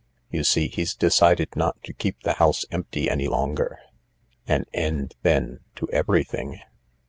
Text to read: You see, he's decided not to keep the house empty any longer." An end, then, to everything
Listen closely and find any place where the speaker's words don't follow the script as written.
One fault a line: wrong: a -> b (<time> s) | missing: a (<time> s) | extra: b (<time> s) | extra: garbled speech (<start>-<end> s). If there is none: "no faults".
no faults